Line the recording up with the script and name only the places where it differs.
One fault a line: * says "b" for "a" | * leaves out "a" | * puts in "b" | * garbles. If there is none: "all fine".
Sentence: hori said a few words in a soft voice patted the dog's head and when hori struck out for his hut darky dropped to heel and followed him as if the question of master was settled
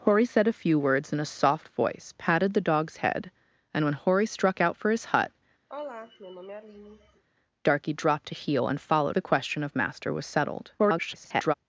* leaves out "him as if"
* garbles